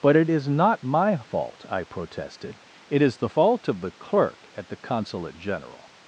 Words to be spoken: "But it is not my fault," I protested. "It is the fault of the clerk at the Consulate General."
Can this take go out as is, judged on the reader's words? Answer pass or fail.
pass